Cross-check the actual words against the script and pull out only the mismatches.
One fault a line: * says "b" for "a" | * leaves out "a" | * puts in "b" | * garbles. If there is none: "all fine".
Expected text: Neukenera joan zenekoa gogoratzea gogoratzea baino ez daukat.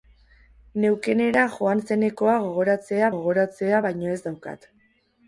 all fine